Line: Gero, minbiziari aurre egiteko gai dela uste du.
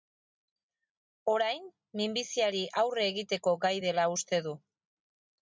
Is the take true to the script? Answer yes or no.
no